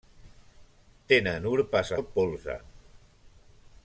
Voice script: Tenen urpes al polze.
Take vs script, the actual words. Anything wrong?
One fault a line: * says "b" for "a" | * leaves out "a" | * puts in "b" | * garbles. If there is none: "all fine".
all fine